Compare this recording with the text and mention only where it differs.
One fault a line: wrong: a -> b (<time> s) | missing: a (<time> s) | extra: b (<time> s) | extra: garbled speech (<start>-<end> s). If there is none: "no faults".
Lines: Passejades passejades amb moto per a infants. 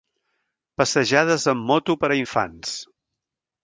missing: passejades (1.5 s)